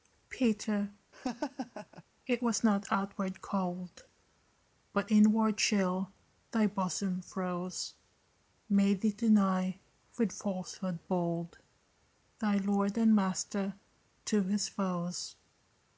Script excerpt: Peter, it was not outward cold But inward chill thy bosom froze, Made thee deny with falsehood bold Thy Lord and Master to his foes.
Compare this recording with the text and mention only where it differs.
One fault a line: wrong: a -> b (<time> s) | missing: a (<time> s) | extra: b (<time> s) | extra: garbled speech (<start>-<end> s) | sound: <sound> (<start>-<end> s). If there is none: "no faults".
sound: laugh (1.1-2.0 s)